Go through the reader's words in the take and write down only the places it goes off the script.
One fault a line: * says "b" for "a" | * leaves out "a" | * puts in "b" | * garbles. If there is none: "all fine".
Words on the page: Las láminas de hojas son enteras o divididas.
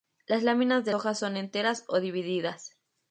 all fine